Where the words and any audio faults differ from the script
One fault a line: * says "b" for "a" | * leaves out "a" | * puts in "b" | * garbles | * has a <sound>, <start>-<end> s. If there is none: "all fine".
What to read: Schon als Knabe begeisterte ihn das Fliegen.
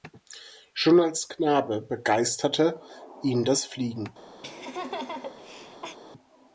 * has a laugh, 4.4-6.0 s